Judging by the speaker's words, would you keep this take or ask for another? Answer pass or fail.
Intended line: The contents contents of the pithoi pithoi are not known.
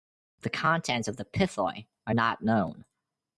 fail